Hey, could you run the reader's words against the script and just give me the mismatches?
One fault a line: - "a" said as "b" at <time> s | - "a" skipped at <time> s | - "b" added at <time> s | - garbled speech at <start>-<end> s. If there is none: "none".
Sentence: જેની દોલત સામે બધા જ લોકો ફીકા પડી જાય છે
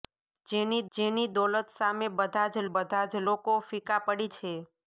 - "જેની" added at 0.9 s
- "બધા જ" added at 2.7 s
- "જાય" skipped at 4.3 s